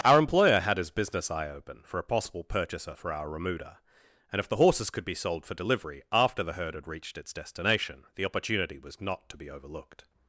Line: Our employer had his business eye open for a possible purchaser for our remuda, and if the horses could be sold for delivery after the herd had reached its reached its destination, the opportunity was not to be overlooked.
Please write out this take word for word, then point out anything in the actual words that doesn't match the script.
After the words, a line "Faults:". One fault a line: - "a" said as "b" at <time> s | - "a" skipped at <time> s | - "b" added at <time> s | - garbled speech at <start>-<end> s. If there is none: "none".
Our employer had his business eye open for a possible purchaser for our remuda, and if the horses could be sold for delivery after the herd had reached its destination, the opportunity was not to be overlooked.
Faults:
- "reached its" skipped at 7.3 s